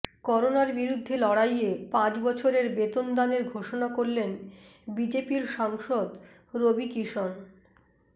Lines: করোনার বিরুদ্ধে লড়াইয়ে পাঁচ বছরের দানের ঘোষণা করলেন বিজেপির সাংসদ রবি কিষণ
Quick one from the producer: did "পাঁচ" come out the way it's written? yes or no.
yes